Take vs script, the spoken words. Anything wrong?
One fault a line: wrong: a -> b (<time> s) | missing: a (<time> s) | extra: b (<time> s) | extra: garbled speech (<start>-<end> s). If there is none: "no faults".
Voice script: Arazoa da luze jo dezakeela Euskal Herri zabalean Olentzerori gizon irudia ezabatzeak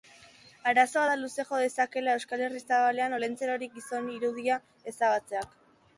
no faults